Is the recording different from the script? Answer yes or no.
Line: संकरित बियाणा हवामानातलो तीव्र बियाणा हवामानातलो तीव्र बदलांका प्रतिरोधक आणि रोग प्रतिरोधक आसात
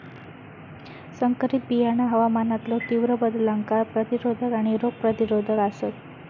yes